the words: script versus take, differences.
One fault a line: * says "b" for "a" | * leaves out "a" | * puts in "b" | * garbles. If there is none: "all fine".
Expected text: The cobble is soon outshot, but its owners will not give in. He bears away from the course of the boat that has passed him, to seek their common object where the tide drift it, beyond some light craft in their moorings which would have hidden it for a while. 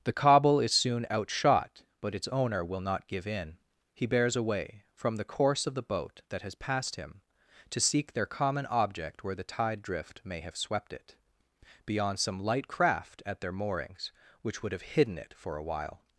* says "owner" for "owners"
* puts in "may have swept"
* says "at" for "in"